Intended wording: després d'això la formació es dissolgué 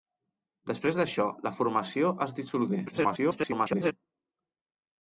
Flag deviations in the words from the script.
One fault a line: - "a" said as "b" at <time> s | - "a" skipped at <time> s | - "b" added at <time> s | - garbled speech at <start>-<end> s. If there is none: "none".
- garbled speech at 2.9-3.9 s